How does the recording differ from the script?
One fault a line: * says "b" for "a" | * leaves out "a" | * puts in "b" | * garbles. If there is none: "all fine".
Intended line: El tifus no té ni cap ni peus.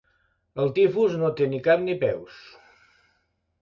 all fine